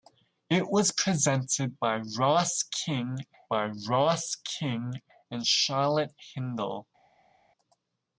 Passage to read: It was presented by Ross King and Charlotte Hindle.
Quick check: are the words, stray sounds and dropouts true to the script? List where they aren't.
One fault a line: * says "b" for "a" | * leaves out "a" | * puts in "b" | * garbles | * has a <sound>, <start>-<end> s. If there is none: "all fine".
* puts in "by Ross King"